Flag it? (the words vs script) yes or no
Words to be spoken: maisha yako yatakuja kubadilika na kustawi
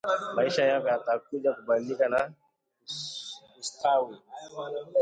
no